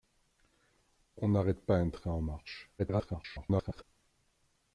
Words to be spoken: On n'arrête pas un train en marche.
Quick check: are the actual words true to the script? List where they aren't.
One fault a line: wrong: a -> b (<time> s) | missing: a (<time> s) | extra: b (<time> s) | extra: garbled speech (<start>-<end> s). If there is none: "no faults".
extra: garbled speech (2.8-3.8 s)